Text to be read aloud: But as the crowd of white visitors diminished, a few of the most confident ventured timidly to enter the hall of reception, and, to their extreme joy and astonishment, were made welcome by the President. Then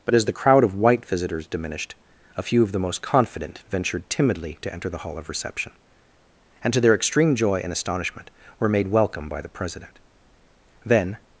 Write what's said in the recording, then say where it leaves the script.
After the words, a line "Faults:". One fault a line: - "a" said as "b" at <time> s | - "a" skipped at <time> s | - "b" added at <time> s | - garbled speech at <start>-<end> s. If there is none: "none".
But as the crowd of white visitors diminished, a few of the most confident ventured timidly to enter the hall of reception, and, to their extreme joy and astonishment, were made welcome by the President. Then
Faults:
none